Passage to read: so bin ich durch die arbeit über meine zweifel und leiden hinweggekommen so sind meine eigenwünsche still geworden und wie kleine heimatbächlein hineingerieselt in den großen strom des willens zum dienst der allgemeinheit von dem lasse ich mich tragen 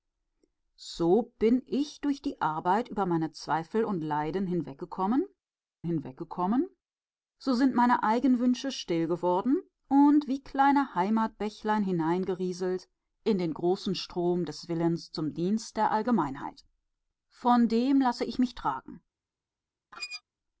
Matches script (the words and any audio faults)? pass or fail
fail